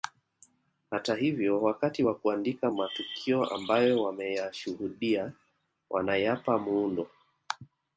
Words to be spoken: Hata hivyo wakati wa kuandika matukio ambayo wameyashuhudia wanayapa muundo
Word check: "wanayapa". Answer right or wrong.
right